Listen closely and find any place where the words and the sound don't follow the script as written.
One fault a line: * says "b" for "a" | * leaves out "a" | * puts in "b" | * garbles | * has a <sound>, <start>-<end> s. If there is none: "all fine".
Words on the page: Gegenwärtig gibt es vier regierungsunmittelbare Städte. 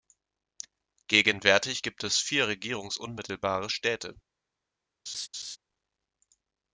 * has a laugh, 5.1-5.6 s